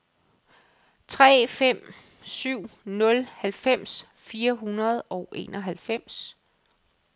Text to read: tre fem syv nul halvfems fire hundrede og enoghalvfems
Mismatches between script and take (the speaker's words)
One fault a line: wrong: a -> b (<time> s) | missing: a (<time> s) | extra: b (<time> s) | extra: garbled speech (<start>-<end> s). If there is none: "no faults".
no faults